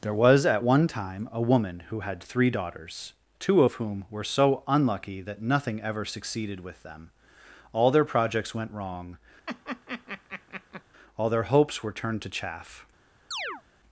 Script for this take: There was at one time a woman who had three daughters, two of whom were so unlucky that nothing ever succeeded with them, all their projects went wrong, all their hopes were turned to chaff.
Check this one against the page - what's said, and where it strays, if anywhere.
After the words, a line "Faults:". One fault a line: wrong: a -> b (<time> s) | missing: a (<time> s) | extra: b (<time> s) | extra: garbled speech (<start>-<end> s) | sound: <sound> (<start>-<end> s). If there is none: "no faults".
There was at one time a woman who had three daughters, two of whom were so unlucky that nothing ever succeeded with them, all their projects went wrong, all their hopes were turned to chaff.
Faults:
sound: laugh (9.5-10.8 s)
sound: chirp (13.3-13.6 s)